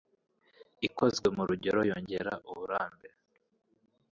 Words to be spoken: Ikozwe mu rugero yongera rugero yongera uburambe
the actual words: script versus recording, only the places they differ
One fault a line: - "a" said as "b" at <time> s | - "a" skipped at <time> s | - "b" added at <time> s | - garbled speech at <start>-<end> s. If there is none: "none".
- "rugero yongera" skipped at 2.3 s